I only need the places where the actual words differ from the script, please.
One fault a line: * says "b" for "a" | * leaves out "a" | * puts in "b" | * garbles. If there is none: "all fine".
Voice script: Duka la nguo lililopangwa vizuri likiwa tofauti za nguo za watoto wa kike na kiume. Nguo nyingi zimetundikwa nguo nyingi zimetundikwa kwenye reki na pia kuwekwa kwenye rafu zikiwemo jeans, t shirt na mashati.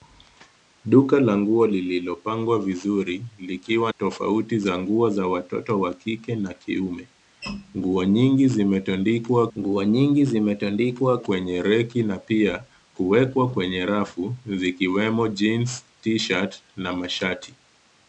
all fine